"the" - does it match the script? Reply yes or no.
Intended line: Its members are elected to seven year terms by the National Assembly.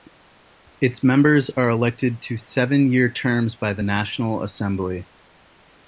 yes